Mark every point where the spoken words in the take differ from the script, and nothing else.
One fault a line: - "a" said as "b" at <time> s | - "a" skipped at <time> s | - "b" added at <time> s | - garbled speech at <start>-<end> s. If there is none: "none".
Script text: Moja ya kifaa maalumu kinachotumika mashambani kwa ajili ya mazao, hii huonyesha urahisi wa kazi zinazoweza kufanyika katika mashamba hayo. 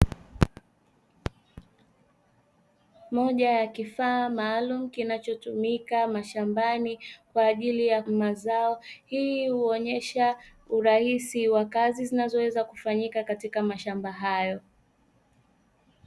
none